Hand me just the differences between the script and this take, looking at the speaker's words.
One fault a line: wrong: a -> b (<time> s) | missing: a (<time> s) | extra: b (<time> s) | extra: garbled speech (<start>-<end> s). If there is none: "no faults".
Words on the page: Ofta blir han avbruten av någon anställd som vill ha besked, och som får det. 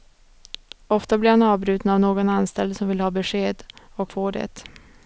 missing: som (4.1 s)